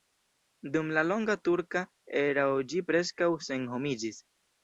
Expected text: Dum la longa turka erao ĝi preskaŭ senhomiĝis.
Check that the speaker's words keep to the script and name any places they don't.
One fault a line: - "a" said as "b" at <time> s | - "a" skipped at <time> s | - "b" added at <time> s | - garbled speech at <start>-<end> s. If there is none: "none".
none